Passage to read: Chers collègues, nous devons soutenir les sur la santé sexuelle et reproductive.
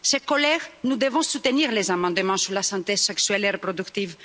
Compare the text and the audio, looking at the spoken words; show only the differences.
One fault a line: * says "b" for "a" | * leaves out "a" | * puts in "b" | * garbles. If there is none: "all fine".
* puts in "amendements"